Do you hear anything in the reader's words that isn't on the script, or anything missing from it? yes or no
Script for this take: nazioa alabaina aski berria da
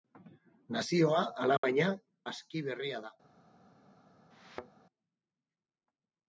no